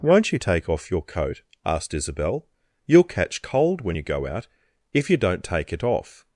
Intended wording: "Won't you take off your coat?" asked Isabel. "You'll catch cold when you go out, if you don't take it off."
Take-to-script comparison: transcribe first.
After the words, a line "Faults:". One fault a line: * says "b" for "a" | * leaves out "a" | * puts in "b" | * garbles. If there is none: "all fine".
"Won't you take off your coat?" asked Isabel. "You'll catch cold when you go out, if you don't take it off."
Faults:
all fine